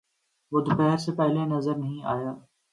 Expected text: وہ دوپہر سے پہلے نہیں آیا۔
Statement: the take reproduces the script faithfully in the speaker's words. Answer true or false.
false